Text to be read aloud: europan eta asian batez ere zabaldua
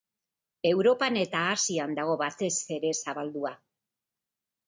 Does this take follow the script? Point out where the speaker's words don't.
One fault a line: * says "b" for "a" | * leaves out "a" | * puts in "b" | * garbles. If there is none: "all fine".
* puts in "dago"